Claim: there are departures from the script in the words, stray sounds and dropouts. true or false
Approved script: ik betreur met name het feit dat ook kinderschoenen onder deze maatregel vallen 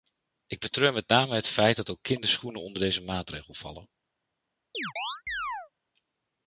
true